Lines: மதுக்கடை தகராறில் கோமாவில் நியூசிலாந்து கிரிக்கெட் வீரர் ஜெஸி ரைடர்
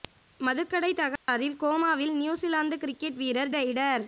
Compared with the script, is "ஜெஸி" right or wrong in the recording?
wrong